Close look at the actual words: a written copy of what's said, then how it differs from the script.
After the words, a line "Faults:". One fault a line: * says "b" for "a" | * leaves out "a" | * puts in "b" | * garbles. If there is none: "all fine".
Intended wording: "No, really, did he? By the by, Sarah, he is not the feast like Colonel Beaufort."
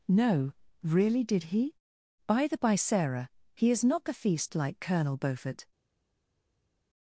"No, really, did he? By the by, Sarah, he is not the feast like Colonel Beaufort."
Faults:
all fine